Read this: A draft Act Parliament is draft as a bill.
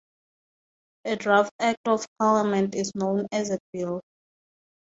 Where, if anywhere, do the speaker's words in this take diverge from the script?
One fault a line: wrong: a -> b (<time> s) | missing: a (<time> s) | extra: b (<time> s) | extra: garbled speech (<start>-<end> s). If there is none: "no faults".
extra: of (1.9 s)
wrong: draft -> known (3.0 s)